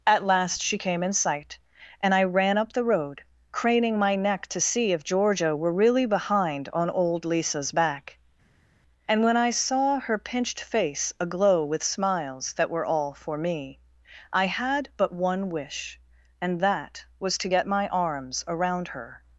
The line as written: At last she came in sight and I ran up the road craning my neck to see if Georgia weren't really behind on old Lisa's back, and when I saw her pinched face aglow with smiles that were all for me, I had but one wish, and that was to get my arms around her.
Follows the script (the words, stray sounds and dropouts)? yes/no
no